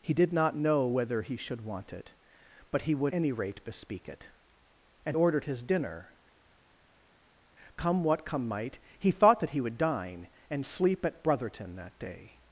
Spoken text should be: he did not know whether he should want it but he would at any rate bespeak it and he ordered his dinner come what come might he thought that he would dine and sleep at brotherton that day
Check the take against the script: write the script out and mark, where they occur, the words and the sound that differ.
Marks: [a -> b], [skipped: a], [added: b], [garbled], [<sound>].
he did not know whether he should want it but he would [skipped: at] any rate bespeak it and [skipped: he] ordered his dinner come what come might he thought that he would dine and sleep at brotherton that day